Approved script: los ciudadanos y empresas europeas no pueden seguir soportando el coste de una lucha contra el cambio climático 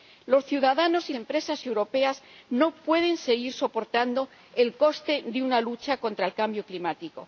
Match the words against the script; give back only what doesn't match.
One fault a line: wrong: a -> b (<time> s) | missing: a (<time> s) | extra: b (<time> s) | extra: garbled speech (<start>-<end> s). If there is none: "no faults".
no faults